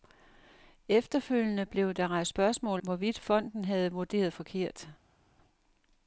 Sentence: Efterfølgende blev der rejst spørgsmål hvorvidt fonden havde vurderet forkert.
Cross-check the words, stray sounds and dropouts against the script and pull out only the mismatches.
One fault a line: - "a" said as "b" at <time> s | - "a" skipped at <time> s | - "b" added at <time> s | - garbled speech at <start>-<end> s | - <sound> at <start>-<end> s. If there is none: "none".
none